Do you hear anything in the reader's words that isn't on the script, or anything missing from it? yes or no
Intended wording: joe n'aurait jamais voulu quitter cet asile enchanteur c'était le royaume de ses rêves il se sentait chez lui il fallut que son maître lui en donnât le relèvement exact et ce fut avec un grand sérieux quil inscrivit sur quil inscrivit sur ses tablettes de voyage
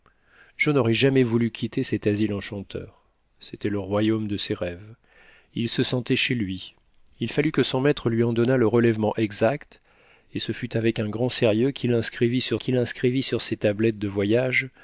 no